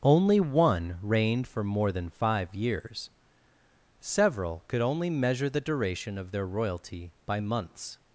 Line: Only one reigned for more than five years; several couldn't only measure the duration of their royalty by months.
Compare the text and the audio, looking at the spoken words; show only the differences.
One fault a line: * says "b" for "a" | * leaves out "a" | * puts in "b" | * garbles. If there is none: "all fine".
* says "could" for "couldn't"